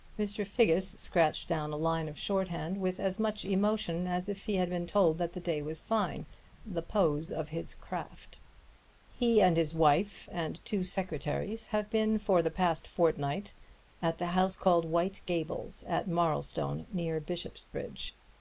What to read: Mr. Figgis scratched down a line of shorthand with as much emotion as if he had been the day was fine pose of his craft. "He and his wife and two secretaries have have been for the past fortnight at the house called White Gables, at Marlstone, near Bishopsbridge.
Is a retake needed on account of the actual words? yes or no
yes